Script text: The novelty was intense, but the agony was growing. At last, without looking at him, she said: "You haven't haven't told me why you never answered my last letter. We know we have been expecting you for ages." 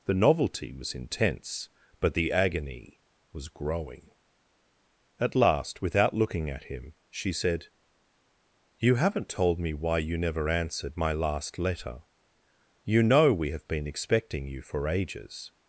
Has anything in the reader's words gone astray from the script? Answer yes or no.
yes